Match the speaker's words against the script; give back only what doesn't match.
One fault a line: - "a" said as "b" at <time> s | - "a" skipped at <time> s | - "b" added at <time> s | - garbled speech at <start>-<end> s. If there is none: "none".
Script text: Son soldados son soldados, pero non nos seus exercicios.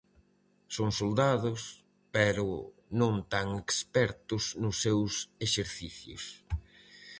- "son soldados pero non" said as "pero non tan expertos" at 2.1 s